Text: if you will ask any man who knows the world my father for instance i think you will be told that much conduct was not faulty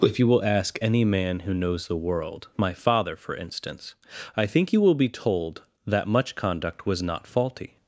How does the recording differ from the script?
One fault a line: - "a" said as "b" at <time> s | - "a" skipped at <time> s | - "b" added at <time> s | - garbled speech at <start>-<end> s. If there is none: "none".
none